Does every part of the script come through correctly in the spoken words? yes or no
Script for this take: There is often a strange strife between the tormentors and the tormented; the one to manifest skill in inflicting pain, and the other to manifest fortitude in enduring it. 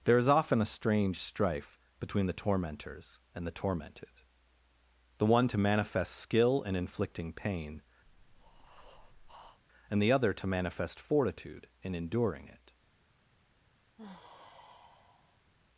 yes